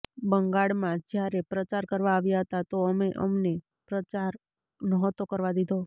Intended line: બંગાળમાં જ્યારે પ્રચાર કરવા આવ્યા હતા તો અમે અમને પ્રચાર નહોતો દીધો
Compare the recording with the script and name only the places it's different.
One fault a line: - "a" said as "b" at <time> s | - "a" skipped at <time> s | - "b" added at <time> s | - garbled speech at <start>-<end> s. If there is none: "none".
- "કરવા" added at 5.3 s